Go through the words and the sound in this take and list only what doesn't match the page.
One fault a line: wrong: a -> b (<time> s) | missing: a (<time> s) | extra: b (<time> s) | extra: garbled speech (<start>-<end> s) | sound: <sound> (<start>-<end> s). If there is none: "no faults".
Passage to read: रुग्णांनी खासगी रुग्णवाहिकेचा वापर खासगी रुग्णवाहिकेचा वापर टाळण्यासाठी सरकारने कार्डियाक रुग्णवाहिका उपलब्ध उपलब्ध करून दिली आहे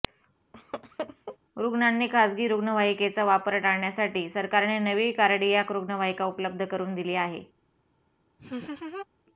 sound: laugh (0.5-1.4 s)
missing: खासगी रुग्णवाहिकेचा वापर (3.6 s)
extra: नवी (4.8 s)
missing: उपलब्ध (6.7 s)
sound: laugh (8.4-9.1 s)